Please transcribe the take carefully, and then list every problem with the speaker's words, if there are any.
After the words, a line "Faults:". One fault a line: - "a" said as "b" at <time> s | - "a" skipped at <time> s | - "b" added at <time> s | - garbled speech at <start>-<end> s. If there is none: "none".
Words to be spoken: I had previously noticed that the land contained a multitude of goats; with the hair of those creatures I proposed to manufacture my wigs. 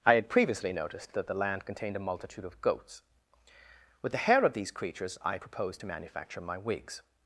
I had previously noticed that the land contained a multitude of goats; with the hair of these creatures I proposed to manufacture my wigs.
Faults:
- "those" said as "these" at 4.5 s